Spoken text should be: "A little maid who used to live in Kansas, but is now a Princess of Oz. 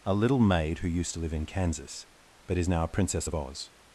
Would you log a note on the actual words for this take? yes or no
no